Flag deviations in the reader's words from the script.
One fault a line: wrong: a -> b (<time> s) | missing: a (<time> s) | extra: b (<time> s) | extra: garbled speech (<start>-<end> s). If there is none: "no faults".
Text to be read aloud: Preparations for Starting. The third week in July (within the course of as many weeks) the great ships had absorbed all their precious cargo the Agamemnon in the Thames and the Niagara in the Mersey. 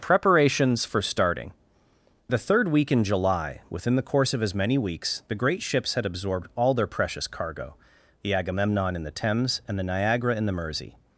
no faults